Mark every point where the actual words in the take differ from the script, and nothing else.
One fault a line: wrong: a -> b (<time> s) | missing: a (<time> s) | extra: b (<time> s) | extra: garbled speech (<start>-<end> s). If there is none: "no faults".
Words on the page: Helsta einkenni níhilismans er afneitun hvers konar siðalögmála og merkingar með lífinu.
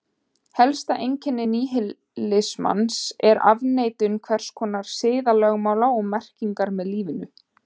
no faults